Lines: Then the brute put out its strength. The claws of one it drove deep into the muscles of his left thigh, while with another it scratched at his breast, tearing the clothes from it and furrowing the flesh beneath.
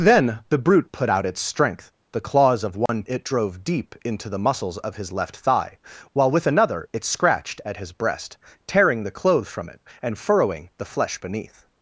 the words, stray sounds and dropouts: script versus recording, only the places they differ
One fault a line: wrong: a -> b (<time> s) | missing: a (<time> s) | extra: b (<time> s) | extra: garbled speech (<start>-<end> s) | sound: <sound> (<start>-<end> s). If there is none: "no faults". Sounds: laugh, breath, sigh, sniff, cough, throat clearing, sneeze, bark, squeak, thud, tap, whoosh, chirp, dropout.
sound: dropout (2.9-2.9 s)